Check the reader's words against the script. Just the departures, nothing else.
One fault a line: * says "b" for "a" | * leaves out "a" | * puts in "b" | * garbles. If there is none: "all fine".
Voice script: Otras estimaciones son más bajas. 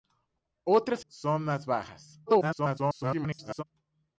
* leaves out "estimaciones"
* garbles